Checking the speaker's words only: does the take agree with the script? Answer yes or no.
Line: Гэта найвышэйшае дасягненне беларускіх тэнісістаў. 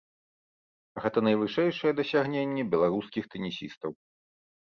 yes